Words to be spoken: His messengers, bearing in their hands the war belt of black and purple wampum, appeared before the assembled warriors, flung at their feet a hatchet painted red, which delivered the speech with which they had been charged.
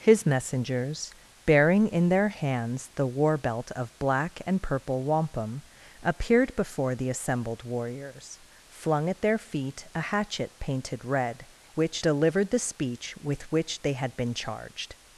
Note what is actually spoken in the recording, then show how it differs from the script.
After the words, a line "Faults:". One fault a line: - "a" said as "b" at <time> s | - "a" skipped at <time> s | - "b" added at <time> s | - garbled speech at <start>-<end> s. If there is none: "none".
His messengers, bearing in their hands the war belt of black and purple wampum, appeared before the assembled warriors, flung at their feet a hatchet painted red, which delivered the speech with which they had been charged.
Faults:
none